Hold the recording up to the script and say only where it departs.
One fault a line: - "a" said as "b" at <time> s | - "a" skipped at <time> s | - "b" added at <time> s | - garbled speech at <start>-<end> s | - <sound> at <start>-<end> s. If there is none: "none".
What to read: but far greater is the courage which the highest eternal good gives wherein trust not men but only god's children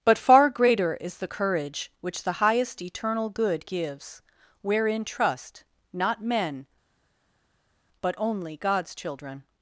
none